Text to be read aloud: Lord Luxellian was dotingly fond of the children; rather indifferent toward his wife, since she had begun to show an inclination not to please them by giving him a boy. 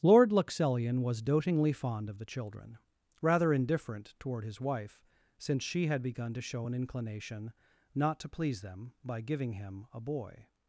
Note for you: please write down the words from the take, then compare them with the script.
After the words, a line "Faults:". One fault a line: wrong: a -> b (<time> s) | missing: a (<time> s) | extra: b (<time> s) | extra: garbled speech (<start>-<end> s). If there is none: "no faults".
Lord Luxellian was dotingly fond of the children; rather indifferent toward his wife, since she had begun to show an inclination not to please them by giving him a boy.
Faults:
no faults